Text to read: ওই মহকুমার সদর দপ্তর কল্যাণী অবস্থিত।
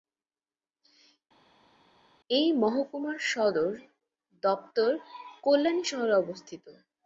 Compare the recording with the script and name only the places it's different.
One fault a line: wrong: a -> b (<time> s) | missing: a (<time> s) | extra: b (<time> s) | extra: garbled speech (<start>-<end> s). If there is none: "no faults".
wrong: ওই -> এই (2.3 s)
extra: শহরে (5.9 s)